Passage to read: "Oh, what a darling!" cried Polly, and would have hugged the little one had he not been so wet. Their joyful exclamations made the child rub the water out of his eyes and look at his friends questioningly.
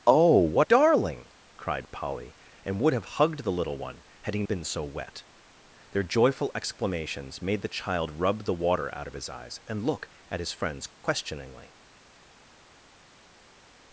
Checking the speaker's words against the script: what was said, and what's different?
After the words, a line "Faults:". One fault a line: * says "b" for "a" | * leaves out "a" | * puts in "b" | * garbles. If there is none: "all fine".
"Oh, what darling!" cried Polly, and would have hugged the little one had he been so wet. Their joyful exclamations made the child rub the water out of his eyes and look at his friends questioningly.
Faults:
* leaves out "a"
* leaves out "not"